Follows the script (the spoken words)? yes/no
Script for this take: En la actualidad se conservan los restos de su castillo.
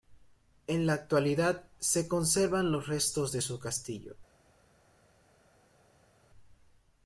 yes